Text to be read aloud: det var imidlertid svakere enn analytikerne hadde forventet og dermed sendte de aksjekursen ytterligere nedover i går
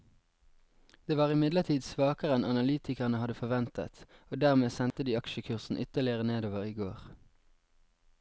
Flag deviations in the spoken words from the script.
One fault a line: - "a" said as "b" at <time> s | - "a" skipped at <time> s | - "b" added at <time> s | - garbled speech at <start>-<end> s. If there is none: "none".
none